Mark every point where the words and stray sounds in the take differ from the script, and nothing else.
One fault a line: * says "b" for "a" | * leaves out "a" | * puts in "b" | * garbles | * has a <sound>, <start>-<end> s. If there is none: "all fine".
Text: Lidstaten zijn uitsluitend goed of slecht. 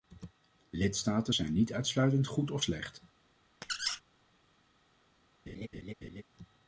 * puts in "niet"
* has a squeak, 3.6-4.0 s
* has a laugh, 5.5-6.2 s